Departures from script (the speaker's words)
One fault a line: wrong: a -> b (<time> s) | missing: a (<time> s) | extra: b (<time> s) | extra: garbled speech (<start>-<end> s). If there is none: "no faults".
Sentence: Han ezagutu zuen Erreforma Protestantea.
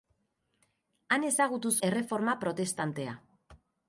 missing: zuen (1.7 s)